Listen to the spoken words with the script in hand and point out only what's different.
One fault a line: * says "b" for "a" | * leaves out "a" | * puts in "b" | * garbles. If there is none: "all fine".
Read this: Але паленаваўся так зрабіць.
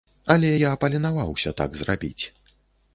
* puts in "я"